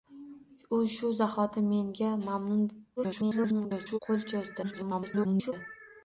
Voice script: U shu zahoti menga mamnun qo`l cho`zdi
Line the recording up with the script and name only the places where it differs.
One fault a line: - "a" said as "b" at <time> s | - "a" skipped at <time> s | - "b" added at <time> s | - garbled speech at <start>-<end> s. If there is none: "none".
- garbled speech at 3.0-4.0 s
- garbled speech at 4.6-5.5 s